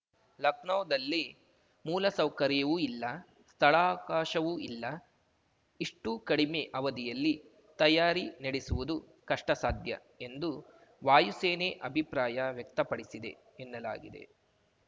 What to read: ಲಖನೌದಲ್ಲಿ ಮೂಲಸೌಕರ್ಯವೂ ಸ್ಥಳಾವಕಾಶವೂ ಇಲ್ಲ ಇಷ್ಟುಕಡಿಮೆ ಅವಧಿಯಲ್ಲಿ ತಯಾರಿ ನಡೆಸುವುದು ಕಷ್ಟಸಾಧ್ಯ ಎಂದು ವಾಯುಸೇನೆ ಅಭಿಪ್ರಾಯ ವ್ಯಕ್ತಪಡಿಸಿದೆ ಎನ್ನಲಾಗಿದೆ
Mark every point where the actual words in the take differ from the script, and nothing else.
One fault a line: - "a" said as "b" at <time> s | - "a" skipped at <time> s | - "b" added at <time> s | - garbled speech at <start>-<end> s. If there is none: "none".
- "ಇಲ್ಲ" added at 2.8 s